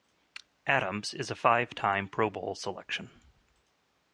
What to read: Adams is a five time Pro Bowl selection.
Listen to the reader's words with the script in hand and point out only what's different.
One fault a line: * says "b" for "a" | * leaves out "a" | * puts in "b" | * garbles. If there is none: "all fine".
all fine